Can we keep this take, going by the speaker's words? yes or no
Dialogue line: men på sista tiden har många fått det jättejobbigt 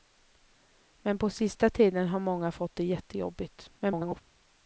no